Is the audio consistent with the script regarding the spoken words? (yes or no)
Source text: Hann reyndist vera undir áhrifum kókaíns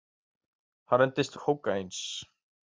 no